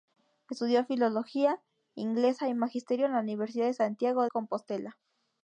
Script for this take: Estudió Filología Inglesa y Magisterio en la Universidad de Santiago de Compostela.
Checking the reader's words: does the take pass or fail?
fail